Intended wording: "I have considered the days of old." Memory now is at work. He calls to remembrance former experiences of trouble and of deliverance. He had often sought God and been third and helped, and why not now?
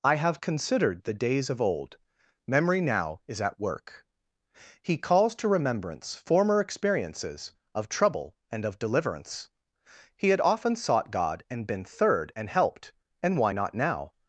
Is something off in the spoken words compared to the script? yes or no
no